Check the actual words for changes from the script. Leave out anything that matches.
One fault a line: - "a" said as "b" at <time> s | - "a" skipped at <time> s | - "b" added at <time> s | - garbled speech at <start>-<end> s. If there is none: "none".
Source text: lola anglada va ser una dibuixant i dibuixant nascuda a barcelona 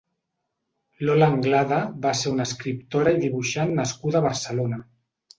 - "dibuixant" said as "escriptora" at 2.5 s